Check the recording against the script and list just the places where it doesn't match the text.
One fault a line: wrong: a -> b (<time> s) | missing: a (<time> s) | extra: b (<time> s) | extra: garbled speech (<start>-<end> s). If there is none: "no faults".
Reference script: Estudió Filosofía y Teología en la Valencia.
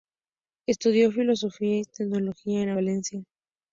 no faults